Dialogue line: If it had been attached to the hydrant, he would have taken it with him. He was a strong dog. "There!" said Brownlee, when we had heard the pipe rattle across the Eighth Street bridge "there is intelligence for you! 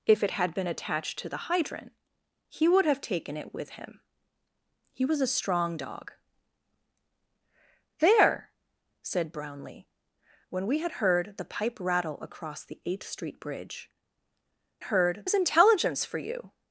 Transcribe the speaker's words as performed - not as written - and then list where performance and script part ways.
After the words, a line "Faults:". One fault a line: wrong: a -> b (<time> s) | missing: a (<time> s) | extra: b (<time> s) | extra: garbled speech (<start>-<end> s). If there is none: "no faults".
If it had been attached to the hydrant, he would have taken it with him. He was a strong dog. "There!" said Brownlee, when we had heard the pipe rattle across the Eighth Street bridge "heard is intelligence for you!
Faults:
wrong: there -> heard (14.8 s)